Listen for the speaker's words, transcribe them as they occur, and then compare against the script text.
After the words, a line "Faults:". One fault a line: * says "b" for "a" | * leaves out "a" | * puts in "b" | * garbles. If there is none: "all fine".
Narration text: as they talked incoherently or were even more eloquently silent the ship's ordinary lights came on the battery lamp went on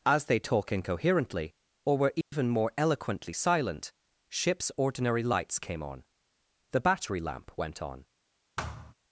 as they talk incoherently or were even more eloquently silent ship's ordinary lights came on the battery lamp went on
Faults:
* says "talk" for "talked"
* leaves out "the"